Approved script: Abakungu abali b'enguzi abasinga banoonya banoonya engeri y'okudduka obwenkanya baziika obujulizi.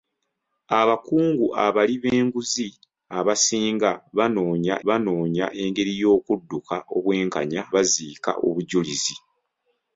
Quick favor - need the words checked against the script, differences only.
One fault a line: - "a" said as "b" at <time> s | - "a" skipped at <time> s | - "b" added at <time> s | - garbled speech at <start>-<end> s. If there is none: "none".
none